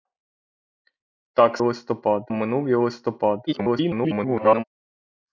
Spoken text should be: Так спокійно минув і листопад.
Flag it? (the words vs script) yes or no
yes